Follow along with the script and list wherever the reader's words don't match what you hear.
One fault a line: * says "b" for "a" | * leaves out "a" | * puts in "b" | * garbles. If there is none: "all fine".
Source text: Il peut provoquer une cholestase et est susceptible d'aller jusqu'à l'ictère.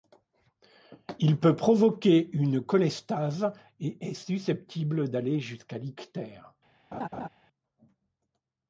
all fine